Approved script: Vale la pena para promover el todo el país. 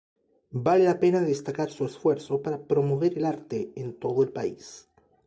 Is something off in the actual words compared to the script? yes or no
yes